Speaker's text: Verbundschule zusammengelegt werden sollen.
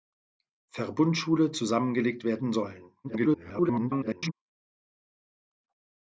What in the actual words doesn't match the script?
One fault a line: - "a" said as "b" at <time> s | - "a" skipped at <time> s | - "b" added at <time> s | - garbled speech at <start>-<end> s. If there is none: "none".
- garbled speech at 3.0-4.3 s